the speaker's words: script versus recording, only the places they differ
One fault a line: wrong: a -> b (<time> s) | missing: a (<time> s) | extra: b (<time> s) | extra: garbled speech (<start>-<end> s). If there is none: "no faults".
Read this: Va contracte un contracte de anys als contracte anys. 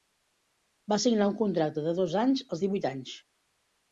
wrong: contracte -> signar (1.0 s)
extra: dos (2.0 s)
wrong: contracte -> divuit (2.6 s)